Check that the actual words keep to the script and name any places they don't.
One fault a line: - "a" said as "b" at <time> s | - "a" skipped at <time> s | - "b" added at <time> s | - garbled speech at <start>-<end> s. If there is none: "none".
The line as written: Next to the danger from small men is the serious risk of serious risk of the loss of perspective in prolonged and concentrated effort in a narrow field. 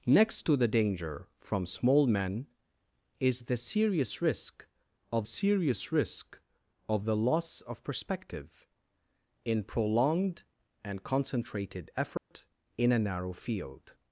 none